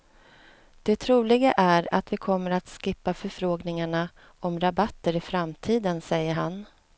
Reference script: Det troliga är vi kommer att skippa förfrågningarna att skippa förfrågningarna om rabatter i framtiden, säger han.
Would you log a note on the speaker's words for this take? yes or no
yes